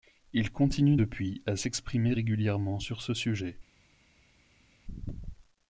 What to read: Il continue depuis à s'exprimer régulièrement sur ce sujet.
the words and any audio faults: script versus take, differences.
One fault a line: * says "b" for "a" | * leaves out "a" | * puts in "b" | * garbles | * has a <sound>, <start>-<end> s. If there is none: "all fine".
all fine